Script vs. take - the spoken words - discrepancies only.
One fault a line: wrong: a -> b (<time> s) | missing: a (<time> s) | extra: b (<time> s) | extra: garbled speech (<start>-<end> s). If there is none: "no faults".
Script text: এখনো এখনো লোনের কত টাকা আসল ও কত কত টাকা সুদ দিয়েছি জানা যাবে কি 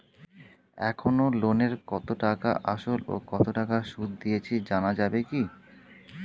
missing: এখনো (1.2 s)
missing: কত (3.4 s)